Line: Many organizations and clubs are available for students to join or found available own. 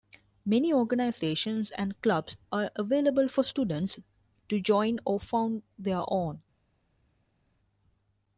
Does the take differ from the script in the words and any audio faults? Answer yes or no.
yes